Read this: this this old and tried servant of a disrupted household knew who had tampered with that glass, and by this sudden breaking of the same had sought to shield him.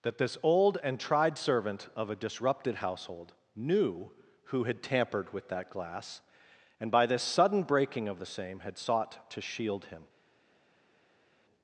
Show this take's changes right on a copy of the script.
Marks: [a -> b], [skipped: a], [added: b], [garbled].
[this -> that] this old and tried servant of a disrupted household knew who had tampered with that glass, and by this sudden breaking of the same had sought to shield him.